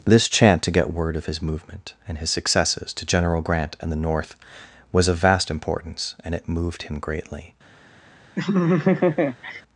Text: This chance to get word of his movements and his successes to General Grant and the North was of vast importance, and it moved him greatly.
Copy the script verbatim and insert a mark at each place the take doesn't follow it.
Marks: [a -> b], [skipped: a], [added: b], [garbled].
This [chance -> chant] to get word of his [movements -> movement] and his successes to General Grant and the North was of vast importance, and it moved him greatly.